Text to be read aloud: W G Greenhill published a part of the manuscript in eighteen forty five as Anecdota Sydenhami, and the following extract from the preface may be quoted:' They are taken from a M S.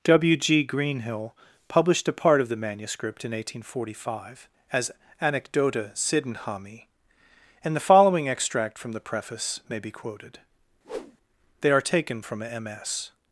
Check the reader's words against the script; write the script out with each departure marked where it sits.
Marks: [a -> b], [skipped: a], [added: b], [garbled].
W G Greenhill published a part of the manuscript in eighteen forty five as Anecdota Sydenhami, and the following extract from the preface may be quoted:' They are taken from a M S.